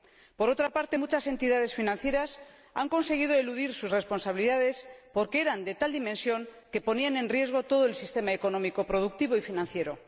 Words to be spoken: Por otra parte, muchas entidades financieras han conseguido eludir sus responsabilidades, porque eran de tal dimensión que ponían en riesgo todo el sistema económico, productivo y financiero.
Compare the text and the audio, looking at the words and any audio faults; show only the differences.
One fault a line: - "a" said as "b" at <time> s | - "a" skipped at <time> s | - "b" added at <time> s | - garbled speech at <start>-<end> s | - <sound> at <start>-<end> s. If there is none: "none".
none